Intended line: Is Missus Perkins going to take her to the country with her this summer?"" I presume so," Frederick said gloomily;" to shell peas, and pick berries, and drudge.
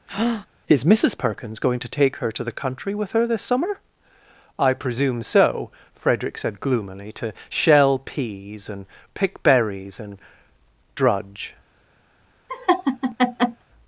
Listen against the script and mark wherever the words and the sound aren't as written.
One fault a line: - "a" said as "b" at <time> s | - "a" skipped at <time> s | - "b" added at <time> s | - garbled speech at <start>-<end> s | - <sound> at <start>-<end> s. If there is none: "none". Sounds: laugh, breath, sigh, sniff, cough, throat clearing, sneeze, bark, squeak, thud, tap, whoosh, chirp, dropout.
- breath at 0.1-0.5 s
- laugh at 12.5-13.6 s